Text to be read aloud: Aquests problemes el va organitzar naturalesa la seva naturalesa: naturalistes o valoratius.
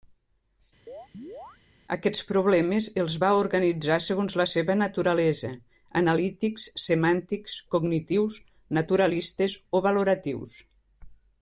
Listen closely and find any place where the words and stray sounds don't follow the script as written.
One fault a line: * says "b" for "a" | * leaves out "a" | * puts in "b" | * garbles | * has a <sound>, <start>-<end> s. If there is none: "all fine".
* has a chirp, 0.9-1.6 s
* says "els" for "el"
* says "segons" for "naturalesa"
* puts in "analítics semàntics cognitius"